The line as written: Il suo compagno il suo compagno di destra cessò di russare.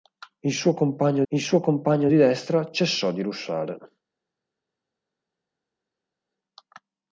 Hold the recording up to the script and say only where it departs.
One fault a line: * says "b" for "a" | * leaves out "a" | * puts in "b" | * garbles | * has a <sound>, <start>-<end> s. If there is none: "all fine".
all fine